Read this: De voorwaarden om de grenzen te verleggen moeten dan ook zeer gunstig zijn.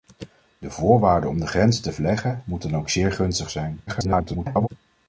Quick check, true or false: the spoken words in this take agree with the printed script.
false